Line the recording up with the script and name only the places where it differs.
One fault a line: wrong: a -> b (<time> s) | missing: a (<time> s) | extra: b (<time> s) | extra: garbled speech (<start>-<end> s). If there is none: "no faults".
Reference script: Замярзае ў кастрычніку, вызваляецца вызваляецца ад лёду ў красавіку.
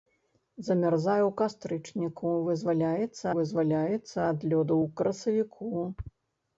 no faults